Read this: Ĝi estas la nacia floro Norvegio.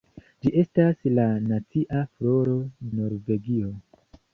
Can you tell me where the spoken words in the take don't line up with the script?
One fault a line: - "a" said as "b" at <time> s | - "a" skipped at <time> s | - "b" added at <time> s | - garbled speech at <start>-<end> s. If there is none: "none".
none